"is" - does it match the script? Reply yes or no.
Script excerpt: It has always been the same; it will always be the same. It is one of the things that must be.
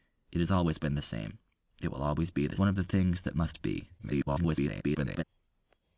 no